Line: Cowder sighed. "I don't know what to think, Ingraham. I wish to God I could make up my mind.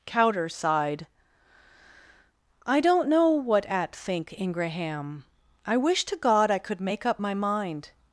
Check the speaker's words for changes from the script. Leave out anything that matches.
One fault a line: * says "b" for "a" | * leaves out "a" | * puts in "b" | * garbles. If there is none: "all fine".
* says "at" for "to"